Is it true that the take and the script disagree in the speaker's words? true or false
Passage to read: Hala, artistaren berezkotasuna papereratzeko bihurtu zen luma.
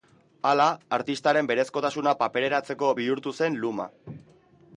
false